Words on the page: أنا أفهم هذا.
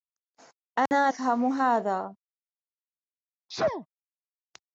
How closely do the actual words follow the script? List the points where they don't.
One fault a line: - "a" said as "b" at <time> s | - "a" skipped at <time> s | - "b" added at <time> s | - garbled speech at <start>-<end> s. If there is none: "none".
none